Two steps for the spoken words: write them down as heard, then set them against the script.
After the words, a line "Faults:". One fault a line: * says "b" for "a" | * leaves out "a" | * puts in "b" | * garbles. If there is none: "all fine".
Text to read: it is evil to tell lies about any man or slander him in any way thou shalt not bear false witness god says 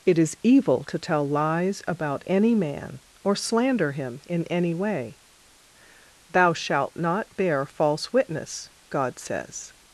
it is evil to tell lies about any man or slander him in any way thou shalt not bear false witness god says
Faults:
all fine